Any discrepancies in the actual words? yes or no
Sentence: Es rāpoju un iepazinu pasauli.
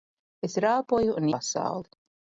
yes